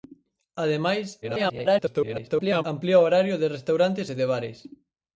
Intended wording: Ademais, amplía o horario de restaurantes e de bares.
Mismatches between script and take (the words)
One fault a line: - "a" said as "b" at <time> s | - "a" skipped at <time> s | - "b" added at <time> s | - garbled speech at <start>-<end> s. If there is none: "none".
- garbled speech at 1.2-2.6 s